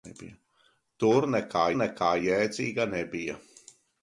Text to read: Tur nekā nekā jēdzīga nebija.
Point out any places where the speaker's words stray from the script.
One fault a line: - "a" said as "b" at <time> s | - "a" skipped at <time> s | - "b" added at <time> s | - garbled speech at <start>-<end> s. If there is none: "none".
none